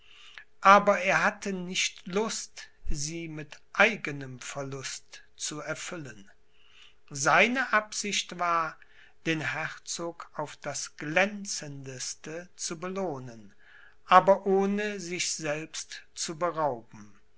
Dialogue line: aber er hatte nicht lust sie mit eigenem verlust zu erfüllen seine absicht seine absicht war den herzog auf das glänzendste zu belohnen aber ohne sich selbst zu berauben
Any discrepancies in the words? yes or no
yes